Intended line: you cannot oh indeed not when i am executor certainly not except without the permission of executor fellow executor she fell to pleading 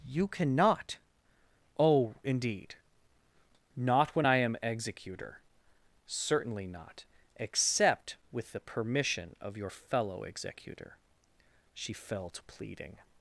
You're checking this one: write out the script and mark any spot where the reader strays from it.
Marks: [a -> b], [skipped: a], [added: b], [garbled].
you cannot oh indeed not when i am executor certainly not except [without -> with] the permission of [executor -> your] fellow executor she fell to pleading